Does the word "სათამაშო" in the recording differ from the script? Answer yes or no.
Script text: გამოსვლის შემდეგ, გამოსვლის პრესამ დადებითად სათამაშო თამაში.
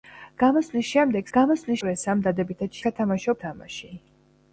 no